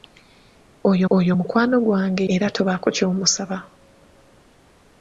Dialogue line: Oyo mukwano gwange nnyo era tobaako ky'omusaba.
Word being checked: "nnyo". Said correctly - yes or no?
no